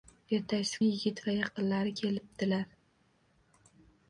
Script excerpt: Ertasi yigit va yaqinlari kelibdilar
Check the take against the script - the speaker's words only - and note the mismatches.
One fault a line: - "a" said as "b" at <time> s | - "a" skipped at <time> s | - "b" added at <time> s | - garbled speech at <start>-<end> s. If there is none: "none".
none